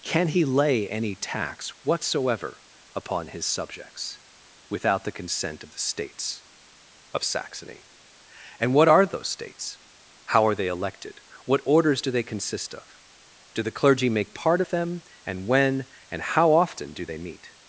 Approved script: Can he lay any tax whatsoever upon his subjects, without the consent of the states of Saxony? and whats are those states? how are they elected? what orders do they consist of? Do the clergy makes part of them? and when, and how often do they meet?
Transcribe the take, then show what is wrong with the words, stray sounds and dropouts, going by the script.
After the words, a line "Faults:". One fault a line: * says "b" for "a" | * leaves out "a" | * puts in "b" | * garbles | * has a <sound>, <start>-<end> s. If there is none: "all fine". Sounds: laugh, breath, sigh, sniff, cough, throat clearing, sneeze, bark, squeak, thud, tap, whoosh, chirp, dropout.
Can he lay any tax whatsoever upon his subjects, without the consent of the states of Saxony? and what are those states? how are they elected? what orders do they consist of? Do the clergy make part of them? and when, and how often do they meet?
Faults:
* says "what" for "whats"
* says "make" for "makes"